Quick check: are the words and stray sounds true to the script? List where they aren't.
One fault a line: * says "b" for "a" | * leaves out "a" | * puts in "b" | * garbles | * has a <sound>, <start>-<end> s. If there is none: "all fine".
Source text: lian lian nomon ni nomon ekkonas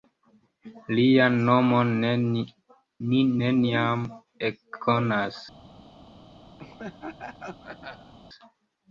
* leaves out "lian"
* says "neniam" for "nomon"
* has a laugh, 6.6-8.1 s